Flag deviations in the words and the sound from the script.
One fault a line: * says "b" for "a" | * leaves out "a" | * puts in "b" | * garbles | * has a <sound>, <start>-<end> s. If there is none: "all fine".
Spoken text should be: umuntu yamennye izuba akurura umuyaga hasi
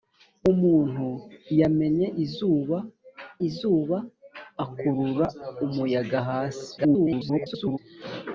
* puts in "izuba"
* garbles